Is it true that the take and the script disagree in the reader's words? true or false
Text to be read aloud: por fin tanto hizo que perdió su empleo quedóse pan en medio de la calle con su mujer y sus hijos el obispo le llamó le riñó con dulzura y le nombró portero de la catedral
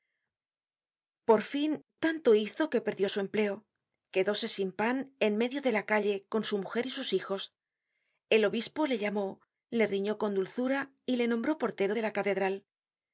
true